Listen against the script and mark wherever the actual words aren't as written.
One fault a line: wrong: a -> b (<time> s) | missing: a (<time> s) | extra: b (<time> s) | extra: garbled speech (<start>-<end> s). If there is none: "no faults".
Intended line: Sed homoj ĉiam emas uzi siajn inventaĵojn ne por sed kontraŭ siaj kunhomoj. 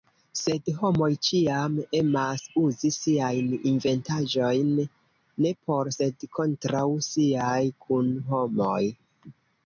no faults